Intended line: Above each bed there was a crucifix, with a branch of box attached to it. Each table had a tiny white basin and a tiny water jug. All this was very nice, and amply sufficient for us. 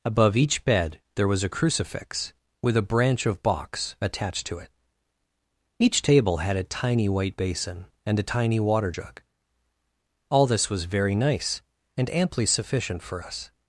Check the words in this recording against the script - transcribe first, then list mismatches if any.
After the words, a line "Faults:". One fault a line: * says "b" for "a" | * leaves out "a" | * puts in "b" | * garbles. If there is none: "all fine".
Above each bed there was a crucifix, with a branch of box attached to it. Each table had a tiny white basin and a tiny water jug. All this was very nice, and amply sufficient for us.
Faults:
all fine